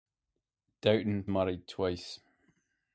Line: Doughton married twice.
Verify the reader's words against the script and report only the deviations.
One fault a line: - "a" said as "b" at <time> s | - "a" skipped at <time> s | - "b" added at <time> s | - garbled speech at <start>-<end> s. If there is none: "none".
none